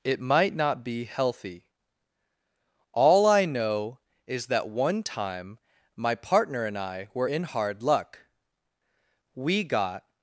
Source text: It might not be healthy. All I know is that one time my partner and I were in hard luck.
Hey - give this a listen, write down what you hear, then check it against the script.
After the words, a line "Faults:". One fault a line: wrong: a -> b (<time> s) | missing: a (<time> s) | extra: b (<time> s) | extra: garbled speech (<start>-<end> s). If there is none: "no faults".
It might not be healthy. All I know is that one time my partner and I were in hard luck. We got
Faults:
extra: We got (9.3 s)